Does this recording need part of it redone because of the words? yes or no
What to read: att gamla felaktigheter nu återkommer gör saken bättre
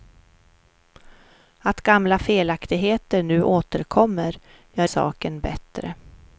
no